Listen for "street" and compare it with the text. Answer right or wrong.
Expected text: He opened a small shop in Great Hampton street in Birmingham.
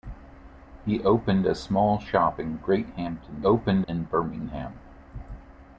wrong